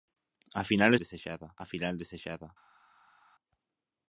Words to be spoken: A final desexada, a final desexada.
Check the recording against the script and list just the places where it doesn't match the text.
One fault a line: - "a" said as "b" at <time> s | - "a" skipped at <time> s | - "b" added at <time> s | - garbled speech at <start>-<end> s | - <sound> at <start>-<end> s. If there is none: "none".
none